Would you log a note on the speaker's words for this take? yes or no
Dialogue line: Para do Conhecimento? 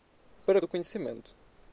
no